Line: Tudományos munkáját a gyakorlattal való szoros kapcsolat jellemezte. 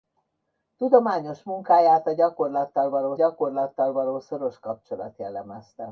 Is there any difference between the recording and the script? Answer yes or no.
yes